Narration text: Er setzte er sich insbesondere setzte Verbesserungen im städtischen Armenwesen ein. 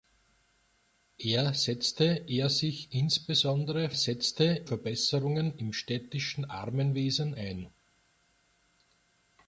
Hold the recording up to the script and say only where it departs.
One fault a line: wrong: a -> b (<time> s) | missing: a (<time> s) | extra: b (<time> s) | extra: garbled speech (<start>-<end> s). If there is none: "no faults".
no faults